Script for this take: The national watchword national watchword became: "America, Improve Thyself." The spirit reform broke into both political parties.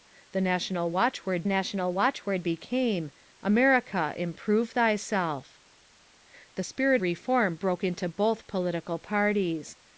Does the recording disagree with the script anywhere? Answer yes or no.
no